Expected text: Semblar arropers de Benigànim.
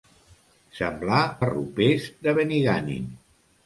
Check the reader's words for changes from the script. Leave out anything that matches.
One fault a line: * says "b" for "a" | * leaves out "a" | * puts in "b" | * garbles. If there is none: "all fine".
all fine